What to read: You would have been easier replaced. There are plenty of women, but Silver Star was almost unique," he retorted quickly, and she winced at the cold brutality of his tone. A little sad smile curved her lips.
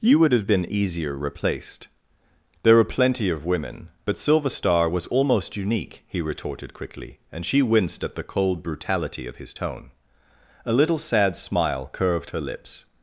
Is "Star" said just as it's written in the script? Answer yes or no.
yes